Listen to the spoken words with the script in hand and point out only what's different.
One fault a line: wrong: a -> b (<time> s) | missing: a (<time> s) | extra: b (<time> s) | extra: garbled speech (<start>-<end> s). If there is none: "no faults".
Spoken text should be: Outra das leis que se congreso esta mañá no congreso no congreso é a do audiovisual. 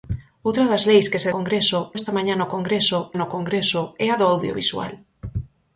no faults